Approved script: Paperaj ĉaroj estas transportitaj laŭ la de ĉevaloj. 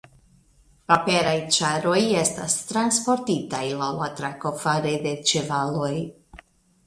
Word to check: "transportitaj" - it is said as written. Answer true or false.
true